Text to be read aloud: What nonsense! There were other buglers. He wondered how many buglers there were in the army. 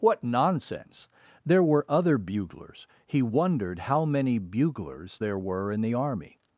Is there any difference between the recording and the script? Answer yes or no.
no